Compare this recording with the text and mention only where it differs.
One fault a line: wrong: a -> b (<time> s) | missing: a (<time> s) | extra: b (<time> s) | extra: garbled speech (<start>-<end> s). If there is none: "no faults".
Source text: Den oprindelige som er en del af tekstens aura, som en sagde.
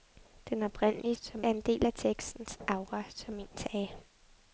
no faults